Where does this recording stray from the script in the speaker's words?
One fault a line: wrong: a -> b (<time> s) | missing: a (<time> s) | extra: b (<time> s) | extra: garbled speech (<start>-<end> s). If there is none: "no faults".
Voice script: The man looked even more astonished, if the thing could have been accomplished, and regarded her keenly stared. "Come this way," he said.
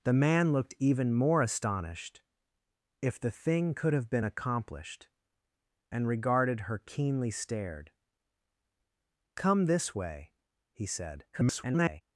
extra: garbled speech (11.3-12.0 s)